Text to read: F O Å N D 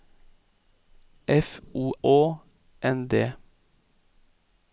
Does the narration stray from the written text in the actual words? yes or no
no